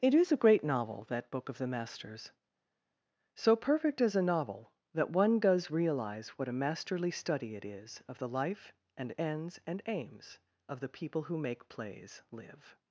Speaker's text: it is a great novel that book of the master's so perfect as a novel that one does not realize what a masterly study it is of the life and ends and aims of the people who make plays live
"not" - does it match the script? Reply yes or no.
no